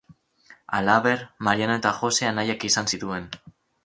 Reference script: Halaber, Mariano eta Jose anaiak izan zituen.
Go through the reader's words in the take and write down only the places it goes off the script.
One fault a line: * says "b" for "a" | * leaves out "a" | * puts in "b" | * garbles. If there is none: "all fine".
all fine